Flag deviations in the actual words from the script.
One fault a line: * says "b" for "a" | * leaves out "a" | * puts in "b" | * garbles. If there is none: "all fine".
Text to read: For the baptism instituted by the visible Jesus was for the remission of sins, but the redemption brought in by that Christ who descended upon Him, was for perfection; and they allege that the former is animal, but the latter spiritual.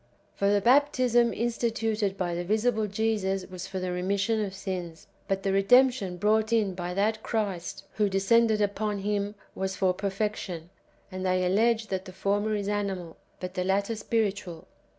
all fine